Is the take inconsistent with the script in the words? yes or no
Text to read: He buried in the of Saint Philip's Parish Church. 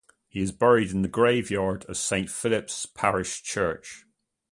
yes